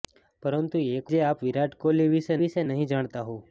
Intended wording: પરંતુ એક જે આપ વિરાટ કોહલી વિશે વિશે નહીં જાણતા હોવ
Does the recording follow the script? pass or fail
pass